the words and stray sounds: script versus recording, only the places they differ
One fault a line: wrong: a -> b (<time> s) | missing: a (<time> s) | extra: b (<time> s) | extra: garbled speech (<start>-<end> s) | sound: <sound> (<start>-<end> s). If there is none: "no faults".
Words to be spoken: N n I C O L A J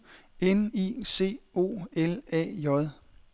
missing: n (0.7 s)